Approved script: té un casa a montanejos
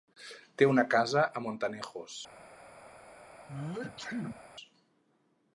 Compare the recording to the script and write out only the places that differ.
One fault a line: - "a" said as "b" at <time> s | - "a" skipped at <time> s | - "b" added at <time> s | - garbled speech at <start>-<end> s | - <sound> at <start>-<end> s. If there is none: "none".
- "un" said as "una" at 0.7 s
- sneeze at 3.5-4.4 s